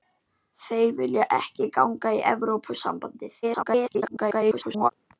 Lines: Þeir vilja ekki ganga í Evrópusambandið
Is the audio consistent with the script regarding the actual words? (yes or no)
no